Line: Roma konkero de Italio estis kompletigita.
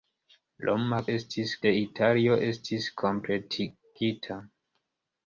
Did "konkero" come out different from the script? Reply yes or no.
yes